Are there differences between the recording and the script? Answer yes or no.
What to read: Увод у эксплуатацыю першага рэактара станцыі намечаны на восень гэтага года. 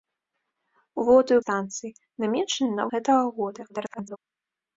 yes